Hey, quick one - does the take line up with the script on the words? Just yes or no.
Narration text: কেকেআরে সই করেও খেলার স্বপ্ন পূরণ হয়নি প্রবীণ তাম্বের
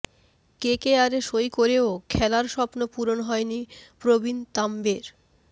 yes